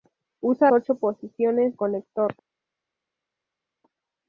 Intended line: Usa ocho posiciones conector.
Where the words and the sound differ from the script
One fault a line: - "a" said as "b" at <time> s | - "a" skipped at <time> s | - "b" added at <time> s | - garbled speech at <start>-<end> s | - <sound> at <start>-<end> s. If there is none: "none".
none